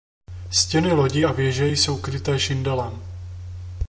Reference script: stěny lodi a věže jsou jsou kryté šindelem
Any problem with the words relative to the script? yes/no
yes